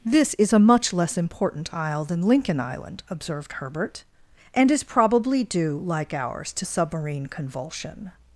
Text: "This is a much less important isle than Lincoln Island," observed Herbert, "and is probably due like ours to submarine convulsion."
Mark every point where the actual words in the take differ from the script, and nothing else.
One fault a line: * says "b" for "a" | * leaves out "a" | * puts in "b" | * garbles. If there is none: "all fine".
all fine